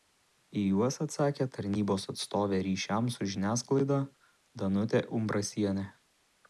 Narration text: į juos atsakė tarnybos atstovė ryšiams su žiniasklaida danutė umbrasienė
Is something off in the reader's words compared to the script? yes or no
no